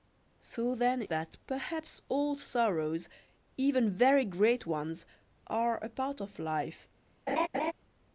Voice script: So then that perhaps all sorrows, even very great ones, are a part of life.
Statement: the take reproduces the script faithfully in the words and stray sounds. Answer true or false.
false